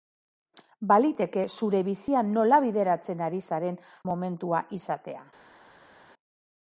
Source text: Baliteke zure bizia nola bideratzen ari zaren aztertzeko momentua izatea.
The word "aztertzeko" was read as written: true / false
false